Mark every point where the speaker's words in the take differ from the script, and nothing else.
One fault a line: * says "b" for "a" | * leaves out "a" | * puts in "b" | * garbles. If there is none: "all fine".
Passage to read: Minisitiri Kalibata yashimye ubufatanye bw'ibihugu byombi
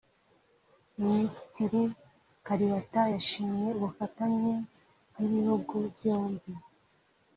all fine